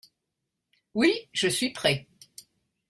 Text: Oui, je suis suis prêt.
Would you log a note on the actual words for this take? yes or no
yes